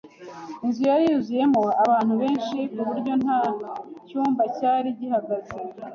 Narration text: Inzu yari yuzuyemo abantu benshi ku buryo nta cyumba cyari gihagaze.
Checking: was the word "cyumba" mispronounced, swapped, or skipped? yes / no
no